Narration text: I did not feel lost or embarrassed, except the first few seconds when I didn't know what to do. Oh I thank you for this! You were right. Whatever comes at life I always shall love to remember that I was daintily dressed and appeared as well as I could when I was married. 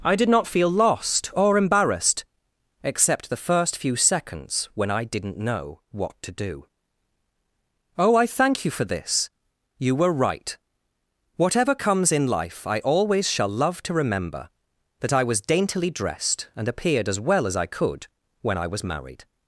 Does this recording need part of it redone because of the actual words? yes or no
yes